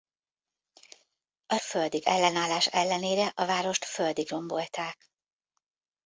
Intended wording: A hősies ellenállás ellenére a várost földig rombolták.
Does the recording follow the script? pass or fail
fail